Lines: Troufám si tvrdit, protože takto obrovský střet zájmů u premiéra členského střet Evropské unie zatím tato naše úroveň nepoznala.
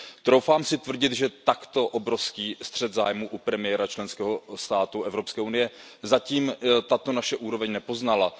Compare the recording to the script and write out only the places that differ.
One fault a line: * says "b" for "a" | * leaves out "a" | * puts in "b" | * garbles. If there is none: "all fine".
* says "že" for "protože"
* says "státu" for "střet"